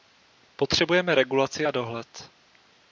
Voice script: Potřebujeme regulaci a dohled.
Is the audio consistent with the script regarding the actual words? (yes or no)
yes